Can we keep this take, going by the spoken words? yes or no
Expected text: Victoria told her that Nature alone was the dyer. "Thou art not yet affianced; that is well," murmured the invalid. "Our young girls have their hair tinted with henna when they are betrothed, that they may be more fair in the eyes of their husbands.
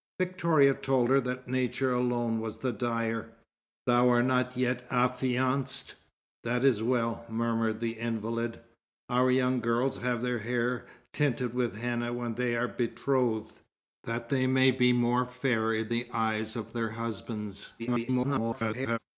no